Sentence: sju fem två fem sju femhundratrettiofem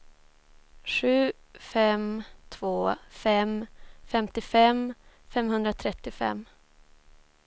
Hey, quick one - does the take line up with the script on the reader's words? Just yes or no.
no